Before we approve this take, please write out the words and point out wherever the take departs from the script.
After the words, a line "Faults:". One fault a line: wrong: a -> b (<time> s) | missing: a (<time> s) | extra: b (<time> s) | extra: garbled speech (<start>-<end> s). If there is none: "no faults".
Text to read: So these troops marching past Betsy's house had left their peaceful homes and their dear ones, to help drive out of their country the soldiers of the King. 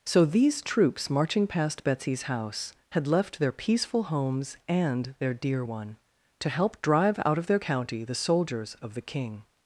So these troops marching past Betsy's house had left their peaceful homes and their dear one, to help drive out of their county the soldiers of the King.
Faults:
wrong: ones -> one (5.6 s)
wrong: country -> county (7.6 s)